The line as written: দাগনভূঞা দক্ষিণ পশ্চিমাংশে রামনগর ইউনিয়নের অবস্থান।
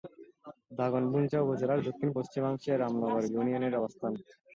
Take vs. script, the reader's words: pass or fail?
fail